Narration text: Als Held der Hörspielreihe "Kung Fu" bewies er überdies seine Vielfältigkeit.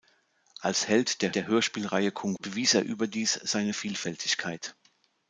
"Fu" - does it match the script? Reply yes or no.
no